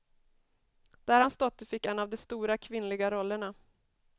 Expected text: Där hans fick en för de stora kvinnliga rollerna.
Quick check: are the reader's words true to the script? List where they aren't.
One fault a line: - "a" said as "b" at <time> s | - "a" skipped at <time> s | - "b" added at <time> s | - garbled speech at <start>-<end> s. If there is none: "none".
- "dotter" added at 1.4 s
- "för" said as "av" at 2.0 s